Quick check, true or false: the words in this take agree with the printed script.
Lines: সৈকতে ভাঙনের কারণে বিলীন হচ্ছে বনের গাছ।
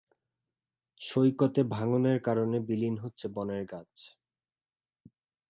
true